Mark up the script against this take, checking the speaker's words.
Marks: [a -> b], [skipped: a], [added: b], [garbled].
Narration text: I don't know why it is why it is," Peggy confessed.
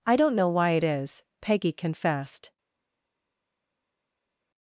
I don't know why it is [skipped: why it is,"] Peggy confessed.